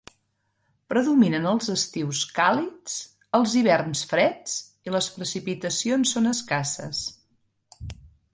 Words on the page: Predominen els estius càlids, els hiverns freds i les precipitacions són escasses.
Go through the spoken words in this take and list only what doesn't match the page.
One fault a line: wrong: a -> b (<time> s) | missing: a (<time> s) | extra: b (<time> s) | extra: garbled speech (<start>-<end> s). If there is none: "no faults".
no faults